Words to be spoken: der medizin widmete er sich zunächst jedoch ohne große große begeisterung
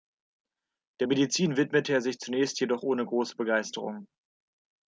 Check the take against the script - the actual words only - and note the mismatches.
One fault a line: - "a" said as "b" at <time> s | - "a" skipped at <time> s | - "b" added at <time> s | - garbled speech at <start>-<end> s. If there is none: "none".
- "große" skipped at 3.3 s